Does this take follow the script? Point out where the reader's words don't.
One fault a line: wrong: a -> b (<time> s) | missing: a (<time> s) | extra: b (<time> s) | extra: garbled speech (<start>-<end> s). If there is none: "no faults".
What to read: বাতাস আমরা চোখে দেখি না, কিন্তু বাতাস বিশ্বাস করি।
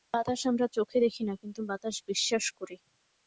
no faults